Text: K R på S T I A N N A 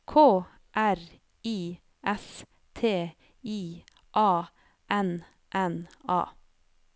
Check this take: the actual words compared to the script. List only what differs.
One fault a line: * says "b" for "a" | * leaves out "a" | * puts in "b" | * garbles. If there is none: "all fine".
* says "I" for "på"